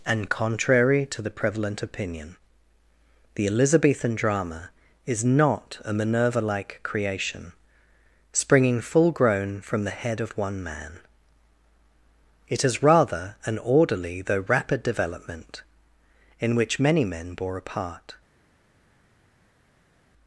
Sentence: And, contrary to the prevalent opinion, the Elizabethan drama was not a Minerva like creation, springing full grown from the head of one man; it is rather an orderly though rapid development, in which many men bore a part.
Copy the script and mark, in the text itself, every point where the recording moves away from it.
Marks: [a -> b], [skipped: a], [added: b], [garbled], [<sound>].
And, contrary to the prevalent opinion, the Elizabethan drama [was -> is] not a Minerva like creation, springing full grown from the head of one man; it is rather an orderly though rapid development, in which many men bore a part.